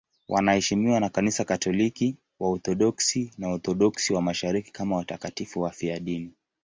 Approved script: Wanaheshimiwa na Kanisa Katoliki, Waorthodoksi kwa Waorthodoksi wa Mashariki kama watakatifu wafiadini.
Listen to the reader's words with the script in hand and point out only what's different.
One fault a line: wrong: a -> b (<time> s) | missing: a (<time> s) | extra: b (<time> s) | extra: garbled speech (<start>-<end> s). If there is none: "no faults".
wrong: kwa -> na (3.4 s)